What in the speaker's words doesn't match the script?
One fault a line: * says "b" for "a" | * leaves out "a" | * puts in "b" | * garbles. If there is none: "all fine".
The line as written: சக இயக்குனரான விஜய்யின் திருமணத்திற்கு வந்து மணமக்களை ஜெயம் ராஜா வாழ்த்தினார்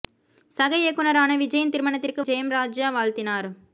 * leaves out "வந்து மணமக்களை"